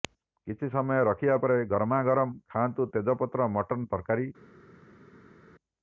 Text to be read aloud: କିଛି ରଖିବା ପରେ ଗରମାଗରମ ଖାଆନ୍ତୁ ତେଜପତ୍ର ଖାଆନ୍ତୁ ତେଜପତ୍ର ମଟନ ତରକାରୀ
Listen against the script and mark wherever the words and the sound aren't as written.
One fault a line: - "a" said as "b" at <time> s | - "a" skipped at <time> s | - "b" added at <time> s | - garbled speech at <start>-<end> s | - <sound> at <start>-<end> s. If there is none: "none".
- "ସମୟ" added at 0.7 s
- "ଖାଆନ୍ତୁ ତେଜପତ୍ର" skipped at 3.5 s